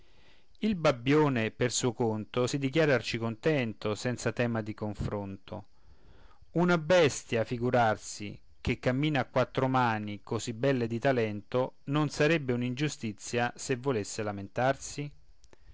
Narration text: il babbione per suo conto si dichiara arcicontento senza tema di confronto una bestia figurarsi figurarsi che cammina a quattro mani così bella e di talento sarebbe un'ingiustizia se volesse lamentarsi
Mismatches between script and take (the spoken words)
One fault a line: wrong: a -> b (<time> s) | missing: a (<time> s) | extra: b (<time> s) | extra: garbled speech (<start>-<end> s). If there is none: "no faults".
missing: figurarsi (8.4 s)
extra: non (11.8 s)